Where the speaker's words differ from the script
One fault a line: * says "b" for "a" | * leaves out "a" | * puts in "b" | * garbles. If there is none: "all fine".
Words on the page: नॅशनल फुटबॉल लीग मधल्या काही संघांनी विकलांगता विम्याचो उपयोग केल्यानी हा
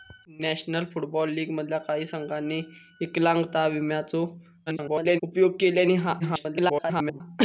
* garbles
* garbles